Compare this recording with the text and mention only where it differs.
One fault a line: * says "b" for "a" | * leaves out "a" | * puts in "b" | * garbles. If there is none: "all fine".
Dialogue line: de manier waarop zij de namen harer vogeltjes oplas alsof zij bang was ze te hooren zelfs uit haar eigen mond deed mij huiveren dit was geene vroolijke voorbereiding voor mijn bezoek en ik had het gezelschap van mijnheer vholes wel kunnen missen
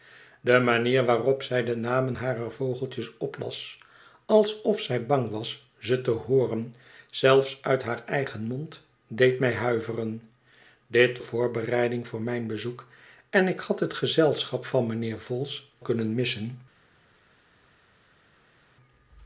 * leaves out "was geene vroolijke"
* leaves out "wel"